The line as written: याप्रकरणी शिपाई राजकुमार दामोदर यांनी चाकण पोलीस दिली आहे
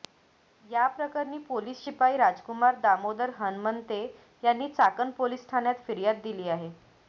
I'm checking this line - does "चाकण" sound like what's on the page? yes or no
yes